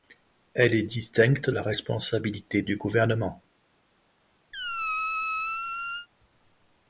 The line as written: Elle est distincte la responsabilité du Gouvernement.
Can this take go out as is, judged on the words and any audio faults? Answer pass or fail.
fail